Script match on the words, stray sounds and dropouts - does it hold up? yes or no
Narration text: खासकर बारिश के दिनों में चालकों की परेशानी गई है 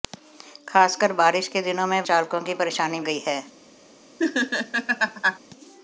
no